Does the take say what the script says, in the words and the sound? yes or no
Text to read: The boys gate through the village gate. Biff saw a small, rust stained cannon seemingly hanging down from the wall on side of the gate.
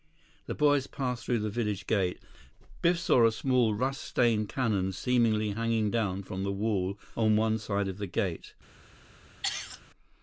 no